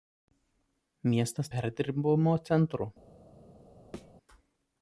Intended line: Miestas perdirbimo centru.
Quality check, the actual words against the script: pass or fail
pass